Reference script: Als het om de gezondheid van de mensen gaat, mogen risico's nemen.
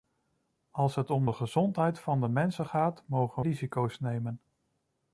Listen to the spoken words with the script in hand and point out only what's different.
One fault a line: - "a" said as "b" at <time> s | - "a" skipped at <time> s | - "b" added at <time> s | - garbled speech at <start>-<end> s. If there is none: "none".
none